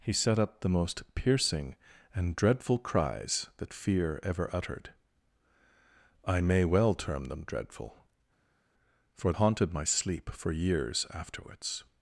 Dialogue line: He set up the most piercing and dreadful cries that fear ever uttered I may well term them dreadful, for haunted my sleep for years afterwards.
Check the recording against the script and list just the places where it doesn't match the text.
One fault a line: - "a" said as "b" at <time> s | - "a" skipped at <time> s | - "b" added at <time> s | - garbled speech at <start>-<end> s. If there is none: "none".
none